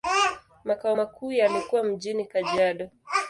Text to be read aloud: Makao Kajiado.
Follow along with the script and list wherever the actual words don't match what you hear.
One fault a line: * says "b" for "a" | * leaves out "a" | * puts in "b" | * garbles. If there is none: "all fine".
* puts in "makuu yalikuwa mjini"